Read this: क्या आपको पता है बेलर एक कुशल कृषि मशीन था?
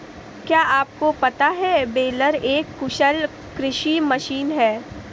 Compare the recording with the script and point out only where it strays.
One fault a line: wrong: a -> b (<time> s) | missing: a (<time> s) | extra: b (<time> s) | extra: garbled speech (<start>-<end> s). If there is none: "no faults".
wrong: था -> है (4.5 s)